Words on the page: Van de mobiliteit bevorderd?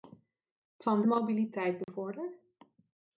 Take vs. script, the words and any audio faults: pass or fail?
fail